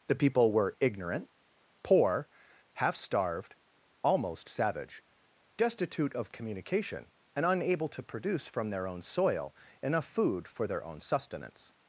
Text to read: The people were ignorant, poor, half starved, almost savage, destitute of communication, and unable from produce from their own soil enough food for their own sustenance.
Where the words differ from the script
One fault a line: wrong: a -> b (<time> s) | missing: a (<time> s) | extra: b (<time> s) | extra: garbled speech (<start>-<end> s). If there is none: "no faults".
wrong: from -> to (7.9 s)